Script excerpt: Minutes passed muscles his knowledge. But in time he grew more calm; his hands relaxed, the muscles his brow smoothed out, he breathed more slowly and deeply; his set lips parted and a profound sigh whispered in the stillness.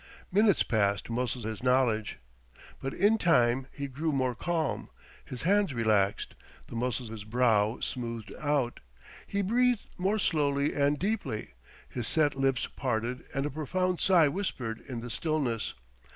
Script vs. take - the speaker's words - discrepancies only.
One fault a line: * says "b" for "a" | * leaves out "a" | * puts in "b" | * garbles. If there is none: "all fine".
all fine